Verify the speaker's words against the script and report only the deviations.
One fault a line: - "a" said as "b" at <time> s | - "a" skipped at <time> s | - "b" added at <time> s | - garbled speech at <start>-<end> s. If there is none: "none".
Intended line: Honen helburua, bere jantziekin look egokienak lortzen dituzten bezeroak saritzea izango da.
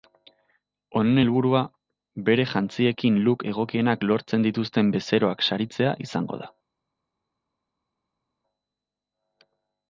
none